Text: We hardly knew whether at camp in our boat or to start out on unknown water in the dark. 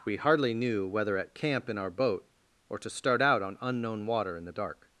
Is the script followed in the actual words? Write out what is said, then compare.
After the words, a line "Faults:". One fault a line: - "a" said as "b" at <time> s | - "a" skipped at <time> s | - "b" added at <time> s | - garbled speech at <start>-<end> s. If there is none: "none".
We hardly knew whether at camp in our boat or to start out on unknown water in the dark.
Faults:
none